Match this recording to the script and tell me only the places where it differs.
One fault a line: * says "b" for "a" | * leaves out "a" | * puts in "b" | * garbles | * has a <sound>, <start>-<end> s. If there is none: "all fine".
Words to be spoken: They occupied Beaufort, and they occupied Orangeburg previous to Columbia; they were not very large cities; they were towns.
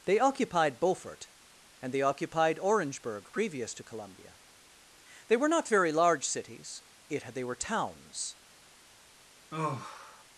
* puts in "yet"
* has a sigh, 9.5-10.2 s